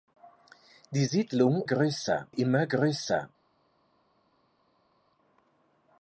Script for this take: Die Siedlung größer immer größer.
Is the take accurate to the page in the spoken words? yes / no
yes